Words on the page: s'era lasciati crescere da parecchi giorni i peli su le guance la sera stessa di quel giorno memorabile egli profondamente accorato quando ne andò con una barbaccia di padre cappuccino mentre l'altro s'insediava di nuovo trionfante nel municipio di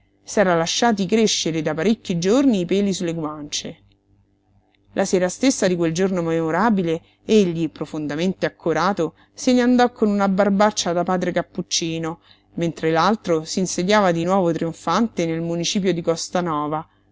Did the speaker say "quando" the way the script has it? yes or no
no